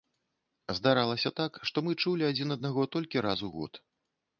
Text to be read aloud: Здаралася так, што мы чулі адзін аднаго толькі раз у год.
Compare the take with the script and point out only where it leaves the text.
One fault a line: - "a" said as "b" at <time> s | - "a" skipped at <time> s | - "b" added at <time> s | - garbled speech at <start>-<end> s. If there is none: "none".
none